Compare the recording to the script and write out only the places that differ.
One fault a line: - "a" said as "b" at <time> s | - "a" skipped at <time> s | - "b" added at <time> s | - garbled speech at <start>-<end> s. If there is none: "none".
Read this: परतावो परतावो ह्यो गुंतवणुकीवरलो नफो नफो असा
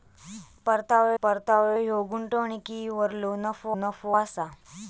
none